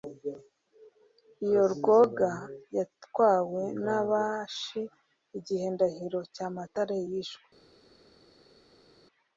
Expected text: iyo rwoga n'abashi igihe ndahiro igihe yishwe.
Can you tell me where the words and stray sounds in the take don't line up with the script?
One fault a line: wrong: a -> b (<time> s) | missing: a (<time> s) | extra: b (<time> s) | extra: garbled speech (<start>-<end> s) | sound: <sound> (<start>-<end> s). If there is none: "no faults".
extra: yatwawe (2.8 s)
wrong: igihe -> cyamatare (6.3 s)